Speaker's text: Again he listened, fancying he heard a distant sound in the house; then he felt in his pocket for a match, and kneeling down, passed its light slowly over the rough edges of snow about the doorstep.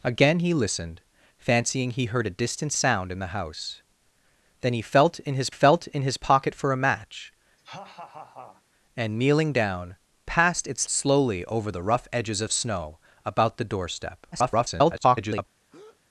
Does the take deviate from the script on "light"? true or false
true